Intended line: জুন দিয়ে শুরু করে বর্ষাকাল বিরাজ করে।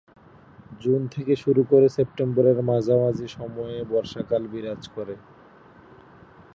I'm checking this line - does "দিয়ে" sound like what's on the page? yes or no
no